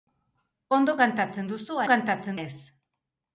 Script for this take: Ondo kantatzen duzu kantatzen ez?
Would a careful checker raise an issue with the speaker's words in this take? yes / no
no